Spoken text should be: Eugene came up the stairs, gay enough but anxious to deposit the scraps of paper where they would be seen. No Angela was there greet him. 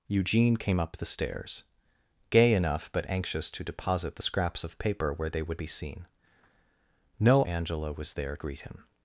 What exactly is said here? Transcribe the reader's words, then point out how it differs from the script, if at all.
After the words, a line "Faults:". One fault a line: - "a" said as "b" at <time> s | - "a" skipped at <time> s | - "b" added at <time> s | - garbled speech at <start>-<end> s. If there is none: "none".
Eugene came up the stairs, gay enough but anxious to deposit the scraps of paper where they would be seen. No Angela was there greet him.
Faults:
none